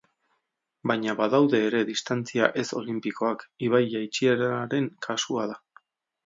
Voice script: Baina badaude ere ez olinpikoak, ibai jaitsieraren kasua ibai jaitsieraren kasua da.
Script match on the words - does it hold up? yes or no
no